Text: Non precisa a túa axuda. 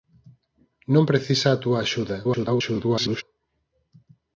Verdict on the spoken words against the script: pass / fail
fail